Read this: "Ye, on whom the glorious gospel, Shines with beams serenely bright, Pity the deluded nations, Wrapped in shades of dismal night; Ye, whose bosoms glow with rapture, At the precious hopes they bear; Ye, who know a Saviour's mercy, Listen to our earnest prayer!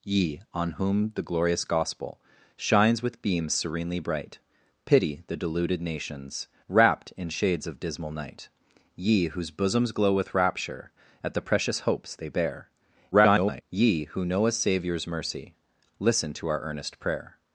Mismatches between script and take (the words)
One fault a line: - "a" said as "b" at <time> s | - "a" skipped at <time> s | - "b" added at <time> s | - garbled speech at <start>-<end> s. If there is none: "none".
- garbled speech at 13.1-13.6 s